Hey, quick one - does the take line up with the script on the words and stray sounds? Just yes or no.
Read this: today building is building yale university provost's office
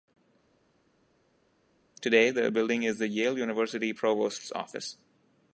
no